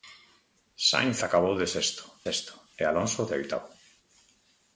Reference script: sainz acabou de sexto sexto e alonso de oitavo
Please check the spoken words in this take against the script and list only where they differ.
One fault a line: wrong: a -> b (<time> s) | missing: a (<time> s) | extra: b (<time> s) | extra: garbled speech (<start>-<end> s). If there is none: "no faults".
no faults